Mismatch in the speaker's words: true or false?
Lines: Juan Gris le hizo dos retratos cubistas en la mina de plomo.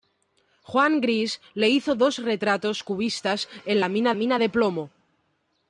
true